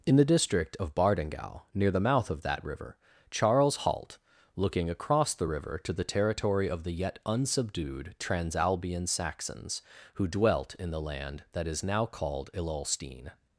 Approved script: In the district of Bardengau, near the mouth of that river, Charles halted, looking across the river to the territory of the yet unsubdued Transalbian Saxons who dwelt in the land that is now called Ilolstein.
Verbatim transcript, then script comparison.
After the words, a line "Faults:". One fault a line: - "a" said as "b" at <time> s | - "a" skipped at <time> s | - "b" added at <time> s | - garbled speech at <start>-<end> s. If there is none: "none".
In the district of Bardengau, near the mouth of that river, Charles halt, looking across the river to the territory of the yet unsubdued Transalbian Saxons who dwelt in the land that is now called Ilolstein.
Faults:
- "halted" said as "halt" at 3.8 s